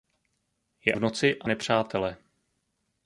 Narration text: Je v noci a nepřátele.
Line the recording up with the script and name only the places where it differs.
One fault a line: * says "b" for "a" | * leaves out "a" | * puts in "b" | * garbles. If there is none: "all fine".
all fine